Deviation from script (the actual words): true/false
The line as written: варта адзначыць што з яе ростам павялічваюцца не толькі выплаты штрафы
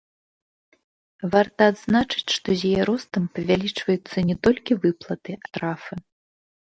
false